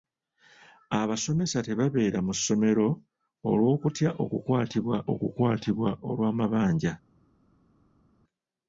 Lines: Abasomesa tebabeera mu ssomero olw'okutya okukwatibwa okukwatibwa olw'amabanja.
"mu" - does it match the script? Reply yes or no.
yes